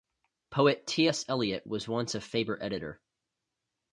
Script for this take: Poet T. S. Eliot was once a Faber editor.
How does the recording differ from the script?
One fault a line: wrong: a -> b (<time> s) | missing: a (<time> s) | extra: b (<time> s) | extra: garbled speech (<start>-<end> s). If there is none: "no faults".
no faults